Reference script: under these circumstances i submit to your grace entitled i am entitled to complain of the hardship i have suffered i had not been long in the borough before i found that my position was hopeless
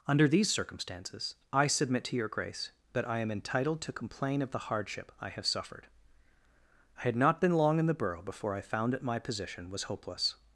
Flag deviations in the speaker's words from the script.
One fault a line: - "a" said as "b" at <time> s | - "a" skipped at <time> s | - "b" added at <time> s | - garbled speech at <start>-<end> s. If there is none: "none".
- "entitled" said as "that" at 2.9 s